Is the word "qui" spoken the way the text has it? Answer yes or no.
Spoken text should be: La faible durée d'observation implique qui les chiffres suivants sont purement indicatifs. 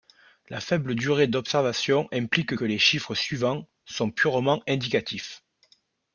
no